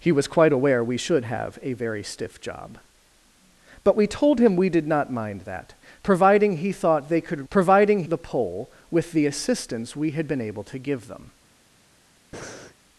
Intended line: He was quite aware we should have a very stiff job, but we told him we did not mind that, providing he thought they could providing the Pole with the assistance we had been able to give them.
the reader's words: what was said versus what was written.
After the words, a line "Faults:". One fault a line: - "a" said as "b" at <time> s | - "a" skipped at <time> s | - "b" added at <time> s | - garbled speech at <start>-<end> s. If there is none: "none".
He was quite aware we should have a very stiff job, but we told him we did not mind that, providing he thought they could providing the Pole with the assistance we had been able to give them.
Faults:
none